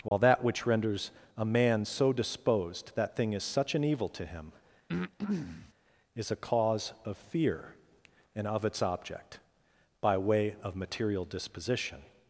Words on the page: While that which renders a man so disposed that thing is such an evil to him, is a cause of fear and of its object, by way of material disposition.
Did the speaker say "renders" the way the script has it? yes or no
yes